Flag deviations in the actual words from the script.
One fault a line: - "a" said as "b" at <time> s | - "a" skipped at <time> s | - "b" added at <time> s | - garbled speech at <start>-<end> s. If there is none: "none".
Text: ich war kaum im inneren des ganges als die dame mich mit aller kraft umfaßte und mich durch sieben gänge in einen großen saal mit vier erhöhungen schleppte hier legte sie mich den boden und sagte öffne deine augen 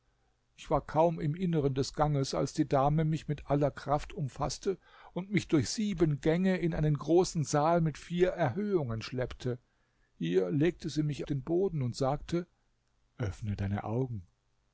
none